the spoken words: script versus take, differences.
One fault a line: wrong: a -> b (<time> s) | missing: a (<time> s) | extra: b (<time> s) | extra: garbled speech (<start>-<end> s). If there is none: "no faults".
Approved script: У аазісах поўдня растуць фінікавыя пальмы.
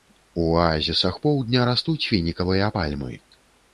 no faults